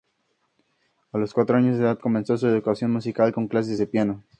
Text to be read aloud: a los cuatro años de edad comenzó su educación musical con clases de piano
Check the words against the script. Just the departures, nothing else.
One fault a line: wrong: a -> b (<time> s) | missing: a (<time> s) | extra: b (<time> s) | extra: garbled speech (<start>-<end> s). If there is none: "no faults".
no faults